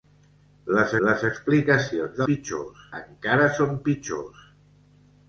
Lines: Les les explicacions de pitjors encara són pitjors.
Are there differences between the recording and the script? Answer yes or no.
no